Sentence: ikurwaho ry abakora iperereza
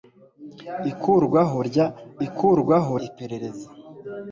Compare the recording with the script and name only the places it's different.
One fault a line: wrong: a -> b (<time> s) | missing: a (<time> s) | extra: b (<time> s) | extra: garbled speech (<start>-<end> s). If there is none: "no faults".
wrong: abakora -> ikurwaho (2.3 s)